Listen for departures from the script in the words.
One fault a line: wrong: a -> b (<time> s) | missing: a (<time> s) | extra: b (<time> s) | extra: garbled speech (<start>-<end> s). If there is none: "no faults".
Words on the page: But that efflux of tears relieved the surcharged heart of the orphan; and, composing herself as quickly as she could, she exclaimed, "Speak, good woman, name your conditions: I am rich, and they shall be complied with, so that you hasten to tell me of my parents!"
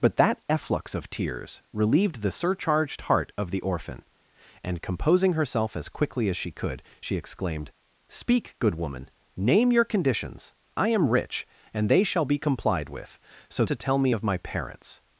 missing: that you hasten (13.6 s)